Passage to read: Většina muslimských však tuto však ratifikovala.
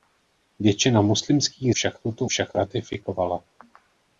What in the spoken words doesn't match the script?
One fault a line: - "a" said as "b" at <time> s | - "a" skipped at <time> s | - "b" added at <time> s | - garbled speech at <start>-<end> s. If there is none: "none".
none